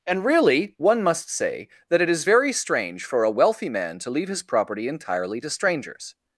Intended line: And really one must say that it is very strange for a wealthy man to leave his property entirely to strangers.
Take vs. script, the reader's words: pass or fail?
pass